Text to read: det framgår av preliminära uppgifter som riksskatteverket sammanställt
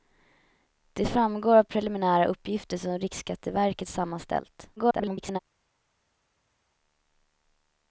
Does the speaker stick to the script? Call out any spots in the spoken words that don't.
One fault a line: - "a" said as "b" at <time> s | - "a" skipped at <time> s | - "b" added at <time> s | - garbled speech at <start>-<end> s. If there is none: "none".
- garbled speech at 4.8-5.4 s